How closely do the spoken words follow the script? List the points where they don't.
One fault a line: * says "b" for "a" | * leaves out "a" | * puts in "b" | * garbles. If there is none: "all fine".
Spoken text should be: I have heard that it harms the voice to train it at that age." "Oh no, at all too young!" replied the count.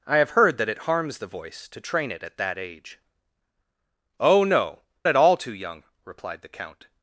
all fine